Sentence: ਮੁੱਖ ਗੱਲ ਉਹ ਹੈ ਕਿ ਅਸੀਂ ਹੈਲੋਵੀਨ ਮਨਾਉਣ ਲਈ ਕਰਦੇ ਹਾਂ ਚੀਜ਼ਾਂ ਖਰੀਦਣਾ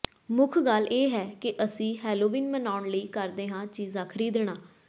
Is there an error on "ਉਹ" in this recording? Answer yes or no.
yes